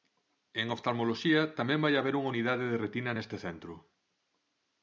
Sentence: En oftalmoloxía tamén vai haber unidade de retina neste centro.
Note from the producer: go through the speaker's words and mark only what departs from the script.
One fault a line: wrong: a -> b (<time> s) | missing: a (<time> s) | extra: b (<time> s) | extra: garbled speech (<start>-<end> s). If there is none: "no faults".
extra: unha (2.2 s)